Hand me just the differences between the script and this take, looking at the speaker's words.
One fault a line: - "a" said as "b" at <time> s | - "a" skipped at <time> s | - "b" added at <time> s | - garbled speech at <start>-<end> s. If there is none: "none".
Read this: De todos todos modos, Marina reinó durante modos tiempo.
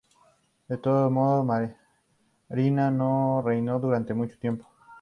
- "todos" skipped at 1.1 s
- "no" added at 2.9 s
- "modos" said as "mucho" at 4.1 s